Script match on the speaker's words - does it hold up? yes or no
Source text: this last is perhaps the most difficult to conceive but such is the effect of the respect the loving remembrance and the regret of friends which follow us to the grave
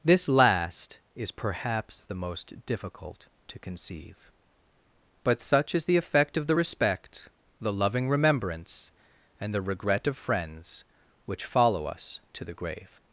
yes